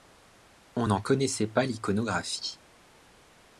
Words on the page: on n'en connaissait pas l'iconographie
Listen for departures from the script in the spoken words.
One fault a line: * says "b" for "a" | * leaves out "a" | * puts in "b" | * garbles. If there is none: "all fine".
all fine